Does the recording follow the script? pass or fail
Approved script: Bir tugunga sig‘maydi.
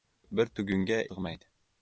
pass